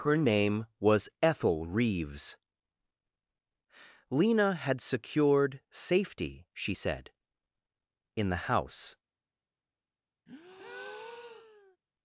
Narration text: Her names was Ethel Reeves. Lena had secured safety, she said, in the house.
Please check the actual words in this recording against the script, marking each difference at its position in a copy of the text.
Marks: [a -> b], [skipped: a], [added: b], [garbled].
Her [names -> name] was Ethel Reeves. Lena had secured safety, she said, in the house.